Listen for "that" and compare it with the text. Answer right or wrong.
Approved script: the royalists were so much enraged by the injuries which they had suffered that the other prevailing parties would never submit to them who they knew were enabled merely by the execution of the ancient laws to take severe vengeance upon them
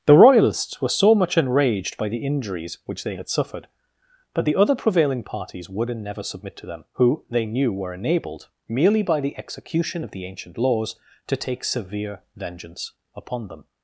wrong